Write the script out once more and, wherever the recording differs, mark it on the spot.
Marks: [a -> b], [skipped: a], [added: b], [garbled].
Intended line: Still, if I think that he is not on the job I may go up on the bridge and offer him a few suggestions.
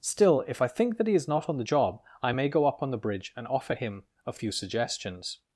Still, if I think that he is not on the job I may go up on the bridge and offer him a few suggestions.